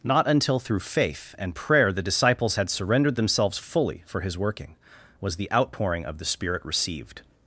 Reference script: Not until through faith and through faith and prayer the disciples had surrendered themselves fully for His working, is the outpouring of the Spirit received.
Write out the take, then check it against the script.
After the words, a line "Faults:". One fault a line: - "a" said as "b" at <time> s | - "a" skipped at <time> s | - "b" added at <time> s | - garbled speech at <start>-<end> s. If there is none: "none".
Not until through faith and prayer the disciples had surrendered themselves fully for His working, was the outpouring of the Spirit received.
Faults:
- "through faith and" skipped at 1.5 s
- "is" said as "was" at 5.2 s